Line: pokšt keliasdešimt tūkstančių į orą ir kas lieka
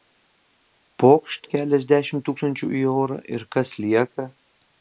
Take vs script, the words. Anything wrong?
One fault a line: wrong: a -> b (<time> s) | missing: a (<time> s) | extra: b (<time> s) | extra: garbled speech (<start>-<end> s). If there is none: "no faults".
no faults